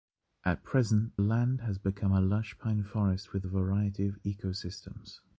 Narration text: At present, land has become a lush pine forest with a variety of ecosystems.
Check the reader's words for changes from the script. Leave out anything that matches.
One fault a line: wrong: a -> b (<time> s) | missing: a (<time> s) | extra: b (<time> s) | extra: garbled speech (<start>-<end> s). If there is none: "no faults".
no faults